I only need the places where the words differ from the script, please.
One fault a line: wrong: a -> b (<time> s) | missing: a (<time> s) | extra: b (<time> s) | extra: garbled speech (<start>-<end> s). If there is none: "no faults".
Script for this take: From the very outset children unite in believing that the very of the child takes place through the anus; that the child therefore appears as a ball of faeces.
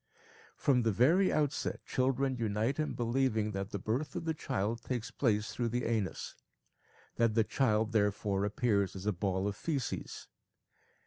wrong: very -> birth (3.8 s)